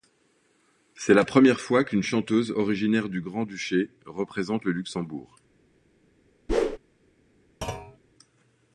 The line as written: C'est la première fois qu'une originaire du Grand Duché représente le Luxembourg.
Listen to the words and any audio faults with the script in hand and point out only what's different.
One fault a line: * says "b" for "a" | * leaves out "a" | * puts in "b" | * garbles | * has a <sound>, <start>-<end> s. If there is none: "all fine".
* puts in "chanteuse"
* has a whoosh, 6.5-6.8 s
* has a thud, 7.6-8.0 s